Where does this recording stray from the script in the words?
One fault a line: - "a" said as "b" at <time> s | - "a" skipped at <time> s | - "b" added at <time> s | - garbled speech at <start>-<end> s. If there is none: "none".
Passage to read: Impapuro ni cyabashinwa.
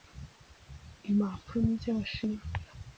none